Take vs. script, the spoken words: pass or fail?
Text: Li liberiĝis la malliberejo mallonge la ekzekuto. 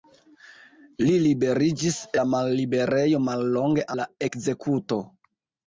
pass